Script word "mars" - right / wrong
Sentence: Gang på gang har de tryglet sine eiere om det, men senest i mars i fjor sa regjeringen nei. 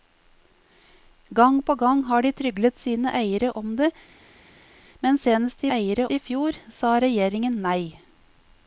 wrong